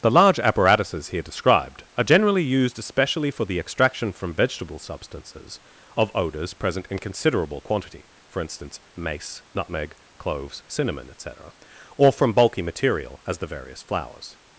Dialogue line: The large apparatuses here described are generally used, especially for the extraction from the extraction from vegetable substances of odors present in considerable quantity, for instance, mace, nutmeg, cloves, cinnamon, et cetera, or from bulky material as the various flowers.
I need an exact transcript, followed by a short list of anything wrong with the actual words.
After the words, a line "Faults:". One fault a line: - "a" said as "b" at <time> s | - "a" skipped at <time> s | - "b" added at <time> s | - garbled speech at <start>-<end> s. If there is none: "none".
The large apparatuses here described are generally used, especially for the extraction from vegetable substances of odors present in considerable quantity, for instance, mace, nutmeg, cloves, cinnamon, et cetera, or from bulky material as the various flowers.
Faults:
- "the extraction from" skipped at 4.3 s